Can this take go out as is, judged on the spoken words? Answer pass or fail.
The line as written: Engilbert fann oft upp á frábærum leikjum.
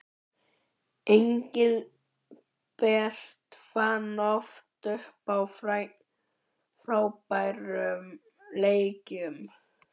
pass